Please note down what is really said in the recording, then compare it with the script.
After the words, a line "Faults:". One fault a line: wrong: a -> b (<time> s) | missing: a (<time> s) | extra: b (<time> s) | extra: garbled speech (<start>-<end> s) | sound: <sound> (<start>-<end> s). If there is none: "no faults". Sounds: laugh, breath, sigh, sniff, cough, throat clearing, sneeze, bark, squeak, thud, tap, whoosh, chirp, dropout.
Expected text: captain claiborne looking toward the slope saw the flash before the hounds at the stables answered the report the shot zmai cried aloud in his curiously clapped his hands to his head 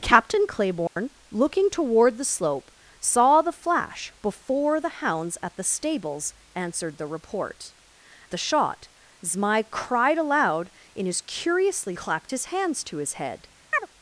captain claiborne looking toward the slope saw the flash before the hounds at the stables answered the report the shot zmai cried aloud in his curiously clapped his hands to his head
Faults:
sound: dropout (0.9-1.0 s)
sound: chirp (13.7-13.9 s)